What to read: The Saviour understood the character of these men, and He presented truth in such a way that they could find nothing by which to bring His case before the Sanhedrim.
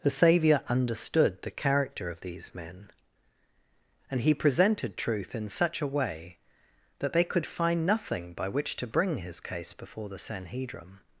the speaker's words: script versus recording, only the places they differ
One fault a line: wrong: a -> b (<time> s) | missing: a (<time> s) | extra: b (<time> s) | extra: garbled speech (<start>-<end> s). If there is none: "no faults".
no faults